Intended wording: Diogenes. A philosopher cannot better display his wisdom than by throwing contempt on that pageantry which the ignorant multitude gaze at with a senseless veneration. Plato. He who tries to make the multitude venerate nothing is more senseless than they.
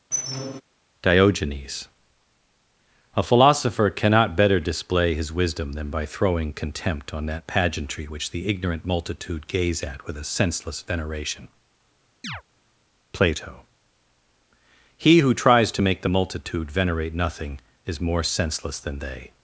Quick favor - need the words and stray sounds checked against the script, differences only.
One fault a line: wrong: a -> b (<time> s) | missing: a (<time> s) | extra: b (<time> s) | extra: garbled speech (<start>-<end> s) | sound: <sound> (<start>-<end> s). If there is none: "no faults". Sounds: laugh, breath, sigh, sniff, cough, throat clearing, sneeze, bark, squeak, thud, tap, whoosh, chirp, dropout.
sound: squeak (0.1-0.6 s)
sound: chirp (12.2-12.4 s)